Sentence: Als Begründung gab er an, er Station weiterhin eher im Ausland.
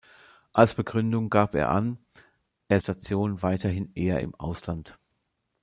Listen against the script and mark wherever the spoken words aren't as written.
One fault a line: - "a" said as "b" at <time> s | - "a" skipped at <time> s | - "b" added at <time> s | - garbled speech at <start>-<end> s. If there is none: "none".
none